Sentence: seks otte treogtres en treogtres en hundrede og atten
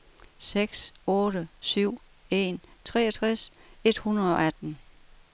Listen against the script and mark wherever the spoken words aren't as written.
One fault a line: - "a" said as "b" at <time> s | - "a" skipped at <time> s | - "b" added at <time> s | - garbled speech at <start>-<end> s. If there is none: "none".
- "treogtres" said as "syv" at 1.6 s
- "en" said as "et" at 3.8 s